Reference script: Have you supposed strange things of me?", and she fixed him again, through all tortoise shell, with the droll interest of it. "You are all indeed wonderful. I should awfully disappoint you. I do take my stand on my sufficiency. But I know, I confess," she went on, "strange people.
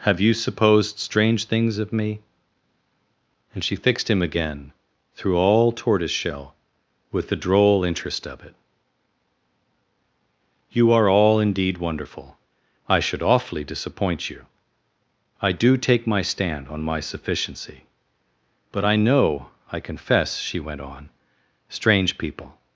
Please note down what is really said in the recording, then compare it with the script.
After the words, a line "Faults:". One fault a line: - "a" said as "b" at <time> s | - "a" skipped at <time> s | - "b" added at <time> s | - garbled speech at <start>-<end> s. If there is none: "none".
Have you supposed strange things of me?", and she fixed him again, through all tortoise shell, with the droll interest of it. "You are all indeed wonderful. I should awfully disappoint you. I do take my stand on my sufficiency. But I know, I confess," she went on, "strange people.
Faults:
none